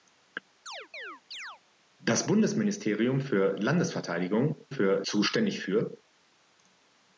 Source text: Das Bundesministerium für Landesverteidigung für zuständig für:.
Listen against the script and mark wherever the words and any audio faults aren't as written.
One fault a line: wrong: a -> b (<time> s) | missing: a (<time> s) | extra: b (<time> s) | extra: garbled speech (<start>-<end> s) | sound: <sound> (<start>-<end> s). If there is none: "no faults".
sound: chirp (0.7-1.6 s)